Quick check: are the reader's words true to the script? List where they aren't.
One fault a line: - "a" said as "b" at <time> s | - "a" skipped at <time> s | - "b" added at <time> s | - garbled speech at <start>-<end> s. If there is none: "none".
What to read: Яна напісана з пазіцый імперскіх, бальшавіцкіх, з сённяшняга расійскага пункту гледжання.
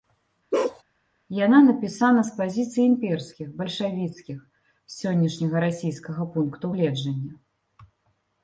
none